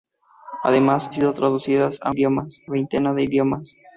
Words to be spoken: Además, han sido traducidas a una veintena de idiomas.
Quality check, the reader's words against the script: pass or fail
fail